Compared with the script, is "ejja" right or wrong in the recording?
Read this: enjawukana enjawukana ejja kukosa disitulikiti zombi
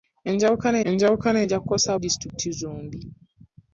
right